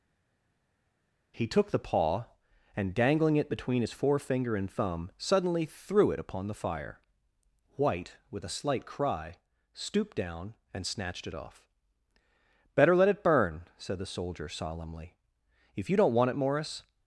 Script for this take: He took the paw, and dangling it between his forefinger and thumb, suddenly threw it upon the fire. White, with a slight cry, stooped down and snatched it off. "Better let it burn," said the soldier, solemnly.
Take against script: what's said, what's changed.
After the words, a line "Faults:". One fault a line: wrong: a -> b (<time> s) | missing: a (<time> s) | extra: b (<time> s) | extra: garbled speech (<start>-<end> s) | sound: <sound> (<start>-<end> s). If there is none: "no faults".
He took the paw, and dangling it between his forefinger and thumb, suddenly threw it upon the fire. White, with a slight cry, stooped down and snatched it off. "Better let it burn," said the soldier, solemnly. "If you don't want it, Morris
Faults:
extra: If you don't want it Morris (15.7 s)